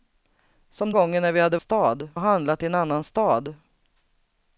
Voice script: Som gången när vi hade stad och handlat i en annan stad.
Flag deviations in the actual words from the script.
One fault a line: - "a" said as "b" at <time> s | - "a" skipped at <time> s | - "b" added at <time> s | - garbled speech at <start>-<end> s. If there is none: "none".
none